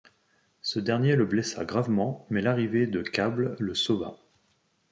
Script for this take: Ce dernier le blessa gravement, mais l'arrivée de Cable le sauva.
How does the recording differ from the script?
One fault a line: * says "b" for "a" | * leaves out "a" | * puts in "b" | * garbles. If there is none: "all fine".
all fine